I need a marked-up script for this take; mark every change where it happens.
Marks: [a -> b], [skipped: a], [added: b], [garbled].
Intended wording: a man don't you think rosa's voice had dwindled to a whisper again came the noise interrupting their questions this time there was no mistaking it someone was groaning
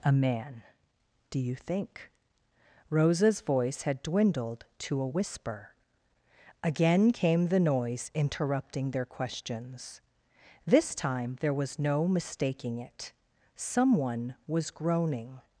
a man [don't -> do] you think rosa's voice had dwindled to a whisper again came the noise interrupting their questions this time there was no mistaking it someone was groaning